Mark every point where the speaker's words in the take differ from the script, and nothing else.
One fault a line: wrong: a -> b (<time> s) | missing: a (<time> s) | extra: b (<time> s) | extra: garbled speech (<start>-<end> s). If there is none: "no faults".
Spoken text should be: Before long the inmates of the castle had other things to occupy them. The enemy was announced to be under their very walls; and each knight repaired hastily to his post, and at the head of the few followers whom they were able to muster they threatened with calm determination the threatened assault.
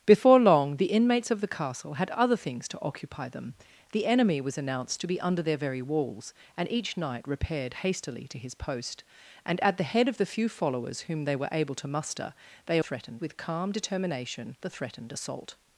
no faults